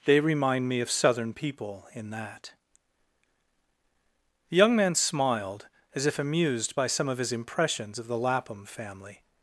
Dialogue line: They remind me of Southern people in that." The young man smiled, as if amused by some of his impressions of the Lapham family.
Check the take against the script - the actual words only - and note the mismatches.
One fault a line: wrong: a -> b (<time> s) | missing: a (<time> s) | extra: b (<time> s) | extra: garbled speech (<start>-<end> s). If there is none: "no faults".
no faults